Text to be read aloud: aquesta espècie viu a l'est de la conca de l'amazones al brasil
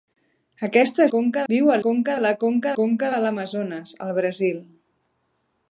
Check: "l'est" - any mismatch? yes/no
yes